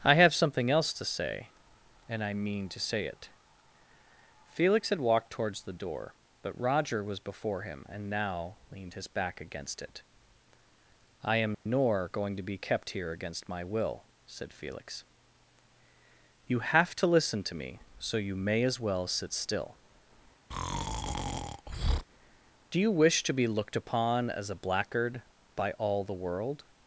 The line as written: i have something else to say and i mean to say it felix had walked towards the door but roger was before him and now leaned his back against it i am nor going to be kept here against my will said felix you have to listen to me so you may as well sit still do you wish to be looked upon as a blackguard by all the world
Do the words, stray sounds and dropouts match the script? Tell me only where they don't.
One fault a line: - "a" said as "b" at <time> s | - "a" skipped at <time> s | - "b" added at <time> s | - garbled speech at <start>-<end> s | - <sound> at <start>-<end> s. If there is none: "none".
- dropout at 11.5-11.7 s
- breath at 20.5-22.1 s